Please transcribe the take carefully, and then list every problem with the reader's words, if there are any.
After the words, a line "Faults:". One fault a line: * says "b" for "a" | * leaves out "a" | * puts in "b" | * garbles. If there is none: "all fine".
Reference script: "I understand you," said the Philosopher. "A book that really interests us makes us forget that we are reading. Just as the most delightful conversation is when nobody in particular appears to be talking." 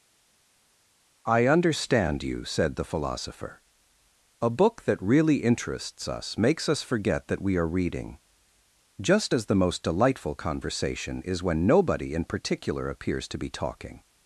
"I understand you," said the Philosopher. "A book that really interests us makes us forget that we are reading. Just as the most delightful conversation is when nobody in particular appears to be talking."
Faults:
all fine